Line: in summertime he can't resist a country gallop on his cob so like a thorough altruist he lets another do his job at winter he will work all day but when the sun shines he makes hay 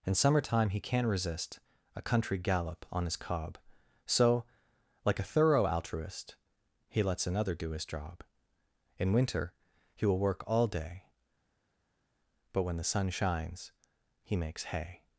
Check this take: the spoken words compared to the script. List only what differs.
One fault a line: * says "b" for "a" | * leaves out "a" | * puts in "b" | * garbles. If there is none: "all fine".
* says "in" for "at"